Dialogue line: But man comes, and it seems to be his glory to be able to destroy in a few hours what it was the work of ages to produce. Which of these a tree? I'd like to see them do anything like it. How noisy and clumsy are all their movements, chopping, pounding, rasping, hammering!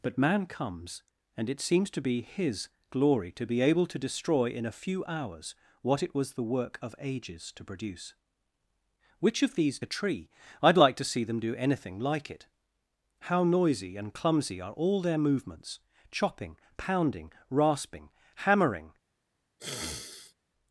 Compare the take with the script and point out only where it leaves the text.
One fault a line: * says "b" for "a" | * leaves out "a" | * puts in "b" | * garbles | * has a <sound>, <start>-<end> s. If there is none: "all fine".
* has a sniff, 19.6-20.3 s